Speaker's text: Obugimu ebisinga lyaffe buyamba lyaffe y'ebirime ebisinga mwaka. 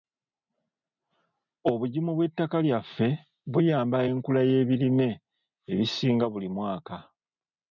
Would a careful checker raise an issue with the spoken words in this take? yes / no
yes